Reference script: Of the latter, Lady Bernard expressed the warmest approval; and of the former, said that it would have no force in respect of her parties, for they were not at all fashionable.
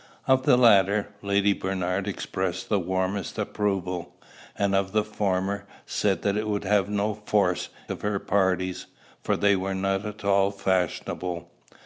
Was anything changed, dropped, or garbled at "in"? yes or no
yes